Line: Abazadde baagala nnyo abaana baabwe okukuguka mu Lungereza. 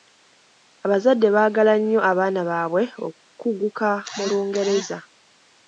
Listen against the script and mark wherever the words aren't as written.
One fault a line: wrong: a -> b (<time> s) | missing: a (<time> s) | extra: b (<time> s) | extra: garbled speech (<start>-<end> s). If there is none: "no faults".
no faults